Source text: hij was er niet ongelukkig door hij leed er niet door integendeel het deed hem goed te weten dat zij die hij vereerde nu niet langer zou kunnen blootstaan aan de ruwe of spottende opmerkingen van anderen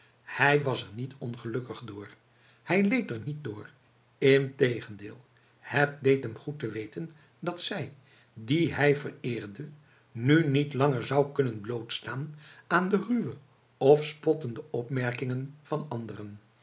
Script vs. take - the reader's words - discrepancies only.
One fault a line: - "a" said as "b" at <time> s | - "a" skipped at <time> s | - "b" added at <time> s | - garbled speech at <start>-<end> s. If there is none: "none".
none